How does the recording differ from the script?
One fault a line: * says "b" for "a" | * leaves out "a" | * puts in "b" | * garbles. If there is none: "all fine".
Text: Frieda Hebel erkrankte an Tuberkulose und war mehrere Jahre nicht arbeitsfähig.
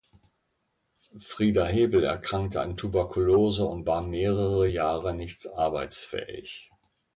all fine